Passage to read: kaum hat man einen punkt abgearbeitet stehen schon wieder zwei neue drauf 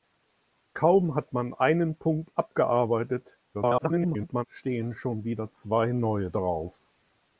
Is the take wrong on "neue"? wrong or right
right